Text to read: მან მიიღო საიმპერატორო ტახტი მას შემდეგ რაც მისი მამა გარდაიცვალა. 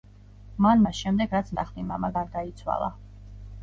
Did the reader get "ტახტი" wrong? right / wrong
wrong